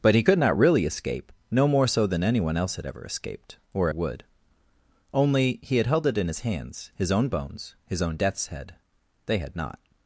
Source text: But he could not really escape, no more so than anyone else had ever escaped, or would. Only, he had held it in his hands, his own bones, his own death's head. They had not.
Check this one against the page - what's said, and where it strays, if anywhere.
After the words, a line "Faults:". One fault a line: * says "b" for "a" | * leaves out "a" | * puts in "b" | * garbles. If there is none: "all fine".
But he could not really escape, no more so than anyone else had ever escaped, or would. Only, he had held it in his hands, his own bones, his own death's head. They had not.
Faults:
all fine